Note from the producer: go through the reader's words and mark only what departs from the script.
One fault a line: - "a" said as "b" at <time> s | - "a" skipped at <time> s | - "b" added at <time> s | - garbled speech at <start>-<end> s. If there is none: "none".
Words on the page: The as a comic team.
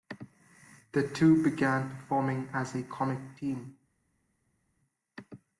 - "two began performing" added at 1.1 s